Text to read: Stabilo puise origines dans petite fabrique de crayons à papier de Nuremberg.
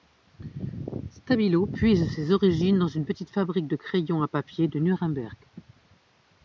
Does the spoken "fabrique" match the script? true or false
true